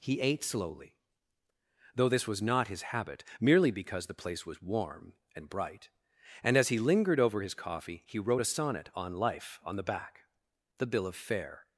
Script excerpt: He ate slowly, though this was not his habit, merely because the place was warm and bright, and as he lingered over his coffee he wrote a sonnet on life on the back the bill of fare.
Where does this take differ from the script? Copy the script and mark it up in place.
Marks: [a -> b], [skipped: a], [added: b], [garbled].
He ate slowly, though this was not his habit, merely because the place was warm and bright, and as he lingered over his coffee he wrote a sonnet on life on the back the bill of fare.